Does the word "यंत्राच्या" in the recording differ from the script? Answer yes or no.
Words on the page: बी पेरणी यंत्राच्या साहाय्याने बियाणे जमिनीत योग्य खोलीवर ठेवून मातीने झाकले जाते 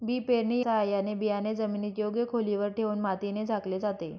yes